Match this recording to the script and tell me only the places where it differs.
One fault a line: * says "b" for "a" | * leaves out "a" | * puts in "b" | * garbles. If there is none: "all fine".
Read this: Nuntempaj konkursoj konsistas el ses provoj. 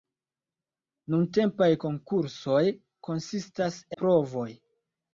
* leaves out "el ses"